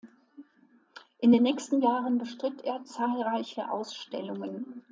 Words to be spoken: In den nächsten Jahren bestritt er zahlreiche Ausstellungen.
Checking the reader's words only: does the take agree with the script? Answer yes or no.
yes